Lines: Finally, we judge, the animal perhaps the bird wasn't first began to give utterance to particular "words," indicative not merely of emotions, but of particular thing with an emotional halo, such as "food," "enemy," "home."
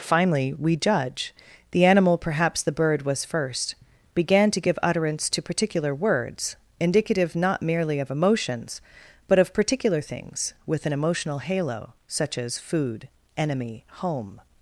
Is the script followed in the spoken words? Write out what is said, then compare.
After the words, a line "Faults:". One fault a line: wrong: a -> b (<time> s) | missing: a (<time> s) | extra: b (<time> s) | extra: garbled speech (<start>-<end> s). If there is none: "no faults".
Finally, we judge, the animal perhaps the bird was first began to give utterance to particular "words," indicative not merely of emotions, but of particular things with an emotional halo, such as "food," "enemy," "home."
Faults:
wrong: wasn't -> was (3.0 s)
wrong: thing -> things (10.0 s)